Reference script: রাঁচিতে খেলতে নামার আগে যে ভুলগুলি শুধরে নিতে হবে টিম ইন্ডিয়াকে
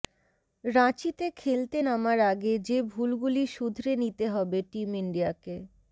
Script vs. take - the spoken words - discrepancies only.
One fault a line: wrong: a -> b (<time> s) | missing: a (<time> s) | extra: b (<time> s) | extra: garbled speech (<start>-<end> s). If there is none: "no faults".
no faults